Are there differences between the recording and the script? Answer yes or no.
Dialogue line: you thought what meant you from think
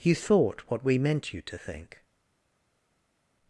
yes